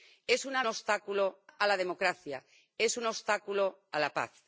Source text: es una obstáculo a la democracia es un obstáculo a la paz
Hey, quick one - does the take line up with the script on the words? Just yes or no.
yes